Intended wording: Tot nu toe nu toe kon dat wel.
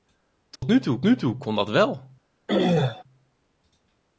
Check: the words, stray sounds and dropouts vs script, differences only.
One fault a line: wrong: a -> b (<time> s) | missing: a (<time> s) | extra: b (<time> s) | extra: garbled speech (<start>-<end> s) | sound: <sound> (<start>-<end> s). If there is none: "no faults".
sound: dropout (0.6-0.6 s)
sound: throat clearing (2.5-3.0 s)